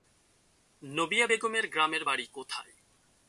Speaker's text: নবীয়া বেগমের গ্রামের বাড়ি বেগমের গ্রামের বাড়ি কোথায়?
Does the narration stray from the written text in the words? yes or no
yes